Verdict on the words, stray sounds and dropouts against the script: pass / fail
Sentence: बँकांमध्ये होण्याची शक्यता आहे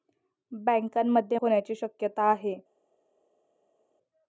pass